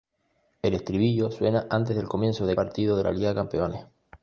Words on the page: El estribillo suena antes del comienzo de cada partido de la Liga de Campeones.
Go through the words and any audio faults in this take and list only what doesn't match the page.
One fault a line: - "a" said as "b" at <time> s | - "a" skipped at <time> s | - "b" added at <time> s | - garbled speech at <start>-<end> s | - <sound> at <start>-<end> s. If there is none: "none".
- "cada" skipped at 2.6 s